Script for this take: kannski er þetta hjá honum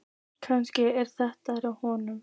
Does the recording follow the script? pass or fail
pass